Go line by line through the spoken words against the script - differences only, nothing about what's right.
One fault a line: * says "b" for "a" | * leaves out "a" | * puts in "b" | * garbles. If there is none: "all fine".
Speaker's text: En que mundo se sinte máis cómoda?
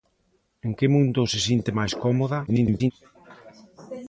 * garbles